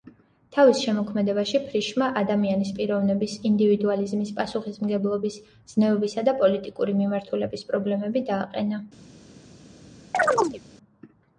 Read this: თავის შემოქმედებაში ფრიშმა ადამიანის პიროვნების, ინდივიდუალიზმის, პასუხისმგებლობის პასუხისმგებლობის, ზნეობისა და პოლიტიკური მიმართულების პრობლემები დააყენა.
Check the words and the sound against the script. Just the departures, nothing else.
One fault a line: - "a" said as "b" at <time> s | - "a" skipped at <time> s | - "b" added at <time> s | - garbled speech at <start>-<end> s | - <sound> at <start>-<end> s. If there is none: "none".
- "პასუხისმგებლობის" skipped at 5.4 s
- chirp at 10.1-10.6 s